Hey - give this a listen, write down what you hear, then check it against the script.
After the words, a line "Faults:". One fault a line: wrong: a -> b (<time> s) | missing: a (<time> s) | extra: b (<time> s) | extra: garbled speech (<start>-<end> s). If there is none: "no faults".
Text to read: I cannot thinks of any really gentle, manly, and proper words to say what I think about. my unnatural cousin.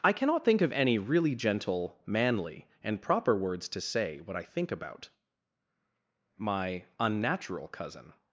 I cannot think of any really gentle, manly, and proper words to say what I think about. my unnatural cousin.
Faults:
wrong: thinks -> think (0.4 s)